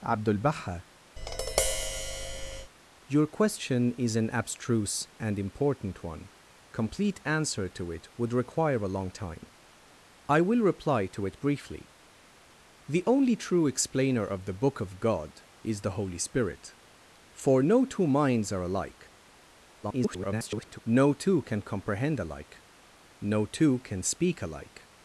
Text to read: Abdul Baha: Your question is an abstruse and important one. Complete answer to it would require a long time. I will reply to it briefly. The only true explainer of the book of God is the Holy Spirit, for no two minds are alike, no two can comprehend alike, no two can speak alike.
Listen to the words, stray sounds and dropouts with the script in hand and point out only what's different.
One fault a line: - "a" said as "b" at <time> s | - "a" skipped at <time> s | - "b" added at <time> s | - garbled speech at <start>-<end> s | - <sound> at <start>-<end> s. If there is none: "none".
- tap at 1.2-2.7 s
- garbled speech at 19.8-20.8 s